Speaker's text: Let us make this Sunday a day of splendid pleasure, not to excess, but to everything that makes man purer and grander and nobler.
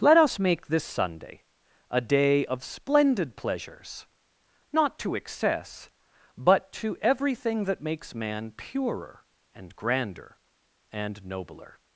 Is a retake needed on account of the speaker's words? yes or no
yes